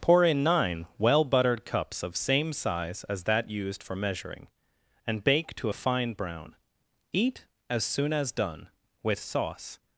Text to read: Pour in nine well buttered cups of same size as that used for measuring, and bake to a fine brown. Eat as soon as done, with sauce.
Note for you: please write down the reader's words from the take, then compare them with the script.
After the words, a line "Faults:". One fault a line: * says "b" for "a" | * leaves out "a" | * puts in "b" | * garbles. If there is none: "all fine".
Pour in nine well buttered cups of same size as that used for measuring, and bake to a fine brown. Eat as soon as done, with sauce.
Faults:
all fine